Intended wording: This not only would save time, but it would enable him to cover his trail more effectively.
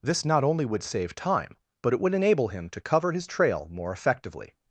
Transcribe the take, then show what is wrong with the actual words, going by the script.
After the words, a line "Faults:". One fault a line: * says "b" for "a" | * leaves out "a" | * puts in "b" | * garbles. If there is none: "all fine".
This not only would save time, but it would enable him to cover his trail more effectively.
Faults:
all fine